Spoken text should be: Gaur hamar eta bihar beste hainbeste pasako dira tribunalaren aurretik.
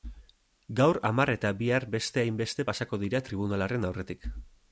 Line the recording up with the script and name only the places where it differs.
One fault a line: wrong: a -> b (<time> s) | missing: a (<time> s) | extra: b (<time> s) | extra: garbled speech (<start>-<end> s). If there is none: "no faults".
no faults